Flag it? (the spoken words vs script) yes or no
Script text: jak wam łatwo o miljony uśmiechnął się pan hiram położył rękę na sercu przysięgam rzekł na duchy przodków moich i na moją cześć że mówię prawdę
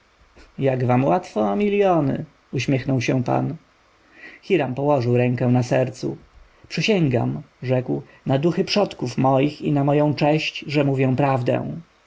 no